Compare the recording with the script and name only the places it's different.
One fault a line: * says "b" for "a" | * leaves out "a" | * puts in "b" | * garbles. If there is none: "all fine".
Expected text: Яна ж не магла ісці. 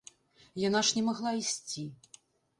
all fine